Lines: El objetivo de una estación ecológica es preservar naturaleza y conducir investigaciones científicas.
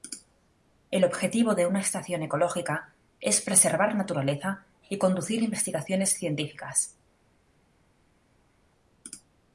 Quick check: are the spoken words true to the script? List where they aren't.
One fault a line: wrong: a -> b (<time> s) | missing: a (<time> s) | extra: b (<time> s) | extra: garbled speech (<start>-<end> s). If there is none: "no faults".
no faults